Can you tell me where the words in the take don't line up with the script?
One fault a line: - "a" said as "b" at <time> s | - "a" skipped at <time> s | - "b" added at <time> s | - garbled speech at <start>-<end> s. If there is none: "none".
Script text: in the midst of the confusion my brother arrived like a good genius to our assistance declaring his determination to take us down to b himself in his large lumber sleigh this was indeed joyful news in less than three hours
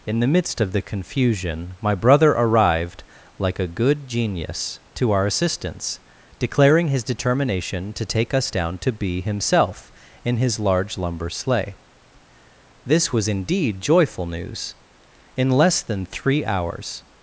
none